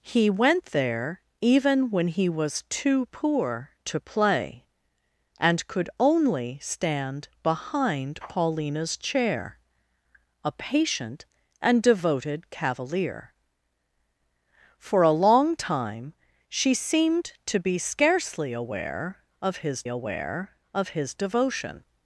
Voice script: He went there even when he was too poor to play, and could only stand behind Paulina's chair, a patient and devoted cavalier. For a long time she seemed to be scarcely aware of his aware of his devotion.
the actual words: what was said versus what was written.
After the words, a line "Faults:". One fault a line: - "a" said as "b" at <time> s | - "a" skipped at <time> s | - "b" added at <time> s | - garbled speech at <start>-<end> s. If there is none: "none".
He went there even when he was too poor to play, and could only stand behind Paulina's chair, a patient and devoted cavalier. For a long time she seemed to be scarcely aware of his aware of his devotion.
Faults:
none